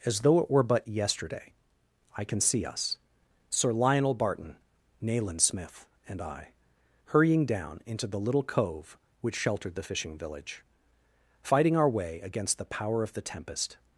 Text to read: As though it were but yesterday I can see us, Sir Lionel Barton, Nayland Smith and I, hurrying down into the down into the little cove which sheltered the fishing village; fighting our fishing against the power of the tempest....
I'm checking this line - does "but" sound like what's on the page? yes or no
yes